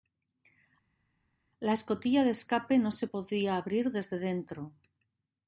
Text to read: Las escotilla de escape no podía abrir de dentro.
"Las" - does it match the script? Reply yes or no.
no